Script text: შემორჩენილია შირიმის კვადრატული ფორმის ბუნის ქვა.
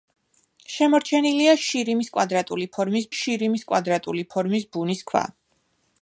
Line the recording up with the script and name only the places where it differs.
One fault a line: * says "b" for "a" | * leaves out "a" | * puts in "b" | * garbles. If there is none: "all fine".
* puts in "შირიმის კვადრატული ფორმის"